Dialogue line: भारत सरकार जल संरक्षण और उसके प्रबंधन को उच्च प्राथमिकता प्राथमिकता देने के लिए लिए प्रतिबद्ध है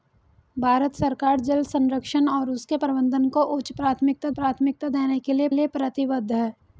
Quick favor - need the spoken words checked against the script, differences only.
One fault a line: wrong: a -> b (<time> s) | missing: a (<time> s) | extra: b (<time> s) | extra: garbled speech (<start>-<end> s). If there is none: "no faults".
no faults